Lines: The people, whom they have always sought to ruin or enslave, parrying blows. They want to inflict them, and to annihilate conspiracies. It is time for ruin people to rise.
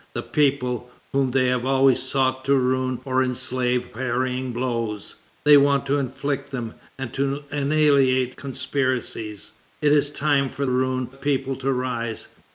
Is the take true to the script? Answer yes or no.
yes